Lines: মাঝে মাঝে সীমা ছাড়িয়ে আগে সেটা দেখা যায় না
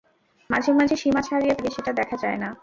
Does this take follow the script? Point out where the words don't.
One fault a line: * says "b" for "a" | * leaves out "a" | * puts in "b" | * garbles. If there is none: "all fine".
all fine